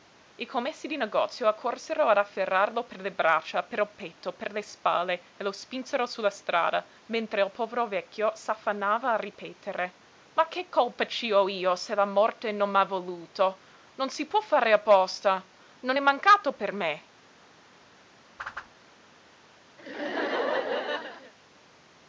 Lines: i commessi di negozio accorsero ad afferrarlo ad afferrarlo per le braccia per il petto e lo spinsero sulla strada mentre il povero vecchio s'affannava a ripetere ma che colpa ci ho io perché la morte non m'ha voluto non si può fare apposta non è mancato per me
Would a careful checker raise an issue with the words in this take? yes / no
yes